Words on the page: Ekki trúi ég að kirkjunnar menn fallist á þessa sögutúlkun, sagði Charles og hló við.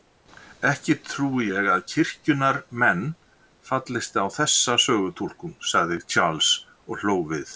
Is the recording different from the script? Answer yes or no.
no